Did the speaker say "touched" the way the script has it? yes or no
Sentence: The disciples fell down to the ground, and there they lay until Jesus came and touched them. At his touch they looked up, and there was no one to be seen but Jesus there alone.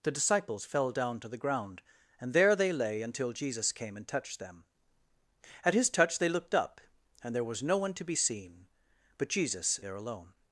yes